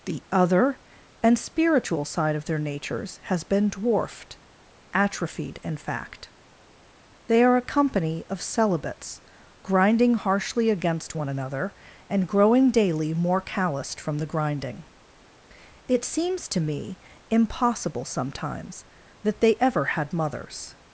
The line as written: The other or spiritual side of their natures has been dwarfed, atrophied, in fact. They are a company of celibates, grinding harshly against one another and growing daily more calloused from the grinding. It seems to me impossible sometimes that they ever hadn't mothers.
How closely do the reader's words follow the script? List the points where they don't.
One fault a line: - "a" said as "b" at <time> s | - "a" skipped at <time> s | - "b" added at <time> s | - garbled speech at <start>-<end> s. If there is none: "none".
- "or" said as "and" at 1.2 s
- "hadn't" said as "had" at 19.8 s